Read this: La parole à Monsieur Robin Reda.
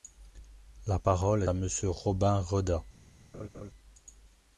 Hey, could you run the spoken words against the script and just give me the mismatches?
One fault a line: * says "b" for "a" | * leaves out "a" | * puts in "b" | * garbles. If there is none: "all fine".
all fine